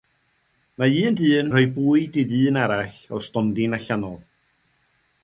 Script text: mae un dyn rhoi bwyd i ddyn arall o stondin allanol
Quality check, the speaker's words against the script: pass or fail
pass